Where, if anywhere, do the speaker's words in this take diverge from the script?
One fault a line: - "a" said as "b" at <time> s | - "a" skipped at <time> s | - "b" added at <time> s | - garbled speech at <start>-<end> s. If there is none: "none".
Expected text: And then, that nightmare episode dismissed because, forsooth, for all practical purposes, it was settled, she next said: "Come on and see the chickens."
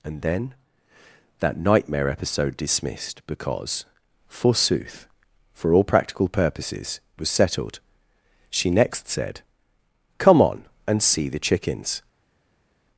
- "it" skipped at 7.0 s